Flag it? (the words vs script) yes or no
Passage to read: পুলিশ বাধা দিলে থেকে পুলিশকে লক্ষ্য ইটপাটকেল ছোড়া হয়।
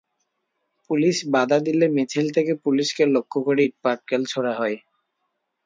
yes